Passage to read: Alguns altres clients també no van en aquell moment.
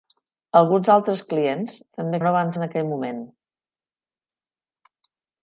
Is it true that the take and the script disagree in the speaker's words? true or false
false